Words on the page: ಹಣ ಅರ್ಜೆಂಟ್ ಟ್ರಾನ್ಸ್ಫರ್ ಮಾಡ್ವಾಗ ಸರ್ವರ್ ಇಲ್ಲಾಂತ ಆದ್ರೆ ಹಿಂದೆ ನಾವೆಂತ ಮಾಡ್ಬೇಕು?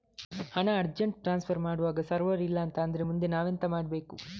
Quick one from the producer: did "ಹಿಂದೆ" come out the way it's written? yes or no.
no